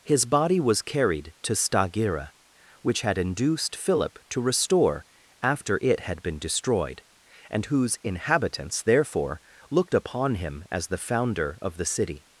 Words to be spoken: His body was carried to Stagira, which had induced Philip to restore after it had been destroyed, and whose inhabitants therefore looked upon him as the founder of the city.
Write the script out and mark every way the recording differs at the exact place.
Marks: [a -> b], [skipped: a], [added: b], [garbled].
His body was carried to Stagira, which had induced Philip to restore after it had been destroyed, and whose inhabitants therefore looked upon him as the founder of the city.